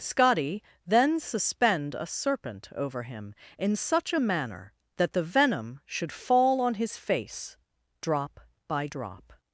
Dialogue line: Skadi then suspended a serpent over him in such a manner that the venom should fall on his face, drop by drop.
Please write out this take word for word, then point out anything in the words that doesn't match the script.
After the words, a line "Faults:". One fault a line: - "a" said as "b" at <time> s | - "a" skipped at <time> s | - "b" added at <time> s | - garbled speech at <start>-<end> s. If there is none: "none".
Skadi then suspend a serpent over him in such a manner that the venom should fall on his face, drop by drop.
Faults:
- "suspended" said as "suspend" at 1.2 s